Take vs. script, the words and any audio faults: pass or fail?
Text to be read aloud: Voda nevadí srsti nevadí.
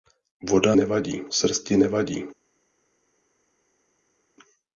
pass